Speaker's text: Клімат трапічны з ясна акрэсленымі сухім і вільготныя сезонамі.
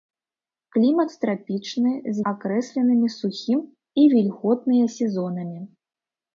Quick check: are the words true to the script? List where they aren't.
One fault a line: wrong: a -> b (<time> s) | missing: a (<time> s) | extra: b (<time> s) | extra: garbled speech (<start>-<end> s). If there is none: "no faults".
missing: ясна (2.2 s)